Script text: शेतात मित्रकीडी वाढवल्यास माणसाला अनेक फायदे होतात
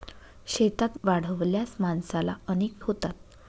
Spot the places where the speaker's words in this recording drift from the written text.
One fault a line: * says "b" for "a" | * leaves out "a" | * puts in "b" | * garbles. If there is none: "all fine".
* leaves out "मित्रकीडी"
* leaves out "फायदे"